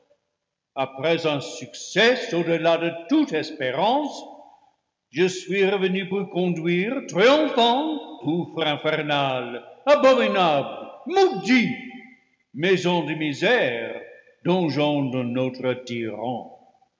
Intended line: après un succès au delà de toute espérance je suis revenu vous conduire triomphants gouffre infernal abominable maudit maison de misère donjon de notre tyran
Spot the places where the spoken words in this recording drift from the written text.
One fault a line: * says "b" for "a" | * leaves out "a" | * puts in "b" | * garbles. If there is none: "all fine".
all fine